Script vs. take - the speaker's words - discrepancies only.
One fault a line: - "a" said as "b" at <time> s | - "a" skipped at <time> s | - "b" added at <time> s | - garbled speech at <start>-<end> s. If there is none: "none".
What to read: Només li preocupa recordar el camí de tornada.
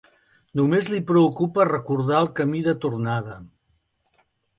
none